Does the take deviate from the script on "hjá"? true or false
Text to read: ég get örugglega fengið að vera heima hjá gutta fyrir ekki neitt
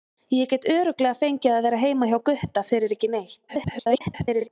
false